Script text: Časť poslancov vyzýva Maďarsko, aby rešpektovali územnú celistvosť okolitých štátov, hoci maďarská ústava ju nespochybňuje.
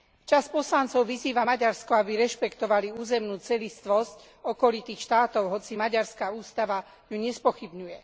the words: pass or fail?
pass